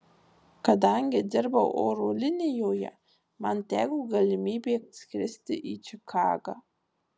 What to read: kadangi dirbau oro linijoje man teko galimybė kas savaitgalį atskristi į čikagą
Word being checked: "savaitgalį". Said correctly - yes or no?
no